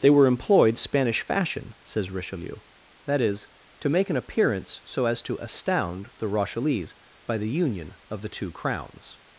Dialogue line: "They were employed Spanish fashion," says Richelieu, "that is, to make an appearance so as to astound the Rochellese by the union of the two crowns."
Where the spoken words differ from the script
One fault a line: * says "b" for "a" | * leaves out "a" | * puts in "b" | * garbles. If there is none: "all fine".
all fine